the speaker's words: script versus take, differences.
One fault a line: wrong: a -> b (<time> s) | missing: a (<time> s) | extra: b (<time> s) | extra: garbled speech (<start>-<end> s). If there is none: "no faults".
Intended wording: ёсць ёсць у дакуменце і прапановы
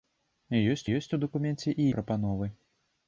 no faults